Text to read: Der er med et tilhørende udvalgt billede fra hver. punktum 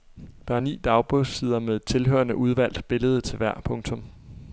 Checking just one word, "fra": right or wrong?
wrong